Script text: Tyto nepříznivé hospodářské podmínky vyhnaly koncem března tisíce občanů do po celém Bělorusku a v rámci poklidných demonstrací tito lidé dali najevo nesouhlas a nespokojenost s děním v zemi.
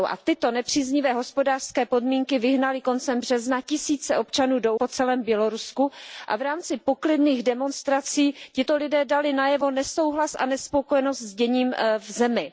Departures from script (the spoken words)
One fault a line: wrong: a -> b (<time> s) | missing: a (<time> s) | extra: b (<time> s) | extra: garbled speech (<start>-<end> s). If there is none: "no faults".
no faults